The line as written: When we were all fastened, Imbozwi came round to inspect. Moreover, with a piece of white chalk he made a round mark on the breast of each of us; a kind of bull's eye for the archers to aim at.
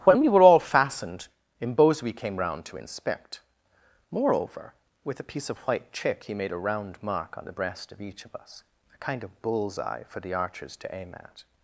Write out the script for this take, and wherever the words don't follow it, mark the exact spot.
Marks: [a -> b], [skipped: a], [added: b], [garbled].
When we were all fastened, Imbozwi came round to inspect. Moreover, with a piece of white [chalk -> chick] he made a round mark on the breast of each of us; a kind of bull's eye for the archers to aim at.